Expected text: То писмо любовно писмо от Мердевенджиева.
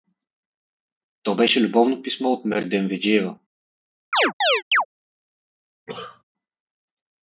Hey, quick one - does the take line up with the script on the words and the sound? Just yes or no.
no